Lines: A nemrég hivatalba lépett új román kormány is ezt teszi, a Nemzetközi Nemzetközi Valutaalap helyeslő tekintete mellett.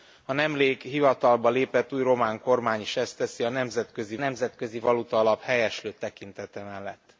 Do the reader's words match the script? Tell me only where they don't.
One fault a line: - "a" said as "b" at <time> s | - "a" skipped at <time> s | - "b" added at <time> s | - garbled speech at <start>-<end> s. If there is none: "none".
none